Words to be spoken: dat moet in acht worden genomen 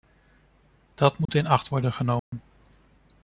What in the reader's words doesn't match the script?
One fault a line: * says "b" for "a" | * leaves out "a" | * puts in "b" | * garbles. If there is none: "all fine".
all fine